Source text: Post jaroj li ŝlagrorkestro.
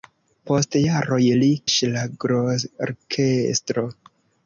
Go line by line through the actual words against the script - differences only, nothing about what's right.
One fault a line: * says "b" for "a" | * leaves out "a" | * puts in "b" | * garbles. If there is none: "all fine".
all fine